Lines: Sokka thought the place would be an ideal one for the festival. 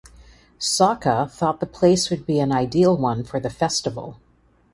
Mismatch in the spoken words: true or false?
false